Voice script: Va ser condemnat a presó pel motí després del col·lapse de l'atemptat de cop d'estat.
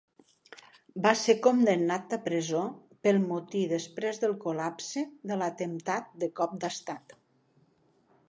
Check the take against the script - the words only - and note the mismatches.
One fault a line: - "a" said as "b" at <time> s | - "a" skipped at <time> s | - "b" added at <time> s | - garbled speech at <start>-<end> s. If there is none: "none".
none